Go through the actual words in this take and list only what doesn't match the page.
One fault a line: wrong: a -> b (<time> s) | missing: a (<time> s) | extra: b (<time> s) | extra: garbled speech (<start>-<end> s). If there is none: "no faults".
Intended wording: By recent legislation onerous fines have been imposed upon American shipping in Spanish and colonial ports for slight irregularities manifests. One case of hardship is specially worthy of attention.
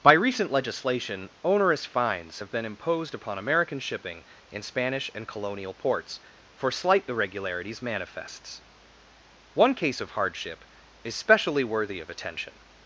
no faults